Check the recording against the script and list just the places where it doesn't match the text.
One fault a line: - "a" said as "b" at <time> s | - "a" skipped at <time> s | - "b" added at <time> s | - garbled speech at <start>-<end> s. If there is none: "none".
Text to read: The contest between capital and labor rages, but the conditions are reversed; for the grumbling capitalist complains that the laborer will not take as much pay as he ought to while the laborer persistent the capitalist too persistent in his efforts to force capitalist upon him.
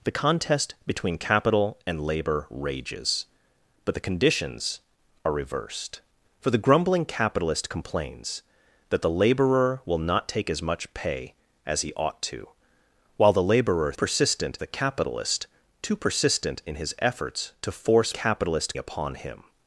none